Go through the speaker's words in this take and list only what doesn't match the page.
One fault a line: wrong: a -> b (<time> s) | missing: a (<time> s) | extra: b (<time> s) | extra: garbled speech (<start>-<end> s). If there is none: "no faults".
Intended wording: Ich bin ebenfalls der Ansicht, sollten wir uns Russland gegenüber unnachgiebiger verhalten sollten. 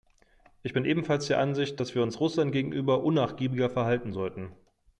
wrong: sollten -> dass (1.8 s)